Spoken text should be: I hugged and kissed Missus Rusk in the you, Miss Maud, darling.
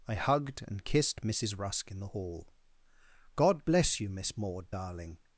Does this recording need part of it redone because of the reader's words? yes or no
yes